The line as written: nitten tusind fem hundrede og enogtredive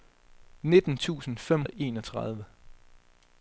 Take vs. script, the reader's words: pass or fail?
fail